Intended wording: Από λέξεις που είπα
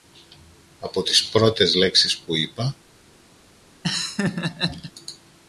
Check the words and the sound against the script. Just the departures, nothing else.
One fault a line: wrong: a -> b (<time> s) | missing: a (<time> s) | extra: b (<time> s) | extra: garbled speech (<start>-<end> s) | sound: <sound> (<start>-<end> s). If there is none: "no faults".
extra: τις πρώτες (1.0 s)
sound: laugh (3.8-4.9 s)